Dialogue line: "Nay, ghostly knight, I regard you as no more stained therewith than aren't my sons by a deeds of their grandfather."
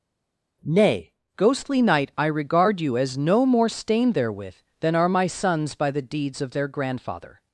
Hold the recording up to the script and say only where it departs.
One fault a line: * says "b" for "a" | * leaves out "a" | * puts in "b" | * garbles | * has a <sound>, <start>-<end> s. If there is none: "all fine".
* says "are" for "aren't"
* says "the" for "a"